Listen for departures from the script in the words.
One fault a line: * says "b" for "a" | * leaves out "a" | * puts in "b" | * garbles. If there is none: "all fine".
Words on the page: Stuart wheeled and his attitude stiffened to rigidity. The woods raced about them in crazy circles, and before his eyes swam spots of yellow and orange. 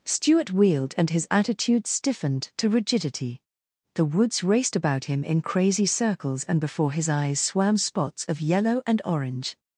* says "him" for "them"